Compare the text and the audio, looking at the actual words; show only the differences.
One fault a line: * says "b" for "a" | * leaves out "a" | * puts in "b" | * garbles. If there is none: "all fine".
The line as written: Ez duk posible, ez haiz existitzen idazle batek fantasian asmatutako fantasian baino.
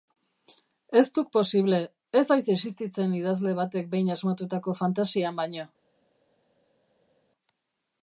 * says "behin" for "fantasian"